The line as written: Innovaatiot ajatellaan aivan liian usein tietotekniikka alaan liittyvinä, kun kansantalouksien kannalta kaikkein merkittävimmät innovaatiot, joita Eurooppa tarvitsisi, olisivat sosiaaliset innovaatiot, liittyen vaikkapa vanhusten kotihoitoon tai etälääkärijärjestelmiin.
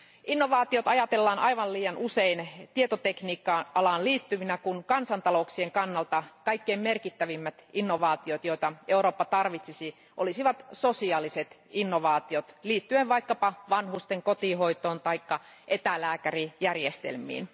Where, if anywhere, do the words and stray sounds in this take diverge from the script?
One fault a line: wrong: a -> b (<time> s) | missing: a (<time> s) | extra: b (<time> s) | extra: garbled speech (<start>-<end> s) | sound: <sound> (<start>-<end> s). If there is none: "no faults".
no faults